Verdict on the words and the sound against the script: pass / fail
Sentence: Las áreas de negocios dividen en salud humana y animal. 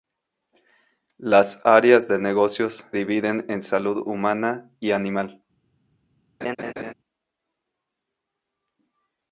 fail